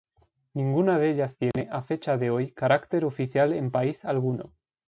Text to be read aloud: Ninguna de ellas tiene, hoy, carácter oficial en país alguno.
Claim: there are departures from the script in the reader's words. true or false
true